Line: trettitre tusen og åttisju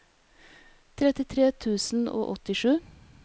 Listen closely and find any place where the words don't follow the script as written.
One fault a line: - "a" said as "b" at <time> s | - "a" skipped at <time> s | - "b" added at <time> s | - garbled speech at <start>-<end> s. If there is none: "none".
none